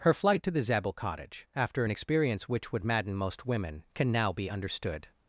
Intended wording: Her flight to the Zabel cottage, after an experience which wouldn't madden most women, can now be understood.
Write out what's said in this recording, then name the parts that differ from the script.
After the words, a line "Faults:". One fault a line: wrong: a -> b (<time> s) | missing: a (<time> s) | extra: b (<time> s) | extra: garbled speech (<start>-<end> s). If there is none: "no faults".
Her flight to the Zabel cottage, after an experience which would madden most women, can now be understood.
Faults:
wrong: wouldn't -> would (2.7 s)